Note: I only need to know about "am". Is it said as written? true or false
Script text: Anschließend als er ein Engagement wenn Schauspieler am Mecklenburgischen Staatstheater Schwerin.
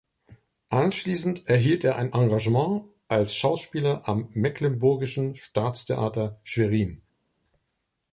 true